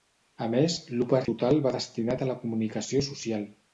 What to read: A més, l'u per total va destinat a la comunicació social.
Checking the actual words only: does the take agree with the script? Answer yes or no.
yes